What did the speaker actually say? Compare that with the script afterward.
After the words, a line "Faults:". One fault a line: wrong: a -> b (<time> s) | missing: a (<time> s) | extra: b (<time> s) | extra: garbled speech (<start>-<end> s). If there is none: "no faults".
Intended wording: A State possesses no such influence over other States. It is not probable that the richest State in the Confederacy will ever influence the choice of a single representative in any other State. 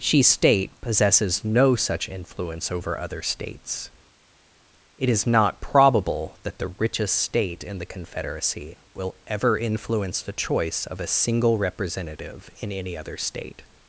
She State possesses no such influence over other States. It is not probable that the richest State in the Confederacy will ever influence the choice of a single representative in any other State.
Faults:
wrong: A -> She (0.0 s)